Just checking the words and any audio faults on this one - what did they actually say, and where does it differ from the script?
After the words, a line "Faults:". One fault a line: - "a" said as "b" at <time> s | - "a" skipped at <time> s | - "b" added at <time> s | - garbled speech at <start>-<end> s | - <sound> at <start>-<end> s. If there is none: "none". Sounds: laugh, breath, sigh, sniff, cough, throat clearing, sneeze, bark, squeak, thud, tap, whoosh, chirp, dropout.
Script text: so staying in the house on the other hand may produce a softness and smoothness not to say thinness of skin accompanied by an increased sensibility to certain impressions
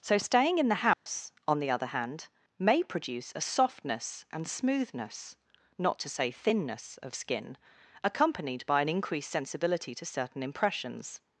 so staying in the house on the other hand may produce a softness and smoothness not to say thinness of skin accompanied by an increased sensibility to certain impressions
Faults:
- dropout at 0.9-1.1 s